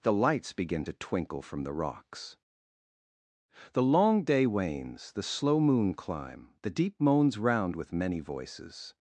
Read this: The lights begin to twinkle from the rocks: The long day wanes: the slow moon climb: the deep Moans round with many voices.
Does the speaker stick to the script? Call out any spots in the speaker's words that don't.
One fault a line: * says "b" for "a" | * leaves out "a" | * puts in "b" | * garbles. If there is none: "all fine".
all fine